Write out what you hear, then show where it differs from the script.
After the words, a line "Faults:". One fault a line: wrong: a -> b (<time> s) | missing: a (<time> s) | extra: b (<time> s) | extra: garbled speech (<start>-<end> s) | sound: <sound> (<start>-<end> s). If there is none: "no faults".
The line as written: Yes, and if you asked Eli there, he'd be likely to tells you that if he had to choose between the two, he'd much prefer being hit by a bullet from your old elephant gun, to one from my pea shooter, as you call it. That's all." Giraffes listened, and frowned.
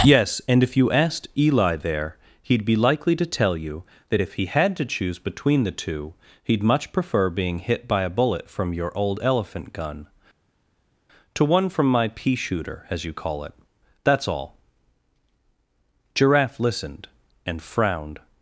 Yes, and if you asked Eli there, he'd be likely to tell you that if he had to choose between the two, he'd much prefer being hit by a bullet from your old elephant gun, to one from my pea shooter, as you call it. That's all." Giraffe listened, and frowned.
Faults:
wrong: tells -> tell (3.2 s)
wrong: Giraffes -> Giraffe (16.1 s)